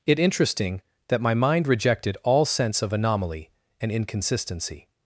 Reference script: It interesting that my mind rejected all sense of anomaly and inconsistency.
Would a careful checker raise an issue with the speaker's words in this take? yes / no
no